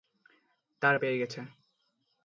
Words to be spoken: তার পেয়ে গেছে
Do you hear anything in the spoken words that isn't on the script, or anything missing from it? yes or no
no